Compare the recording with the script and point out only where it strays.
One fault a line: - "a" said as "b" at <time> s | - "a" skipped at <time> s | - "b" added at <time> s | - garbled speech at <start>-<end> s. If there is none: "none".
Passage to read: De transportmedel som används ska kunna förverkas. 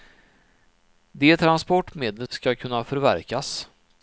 - "som används" skipped at 2.3 s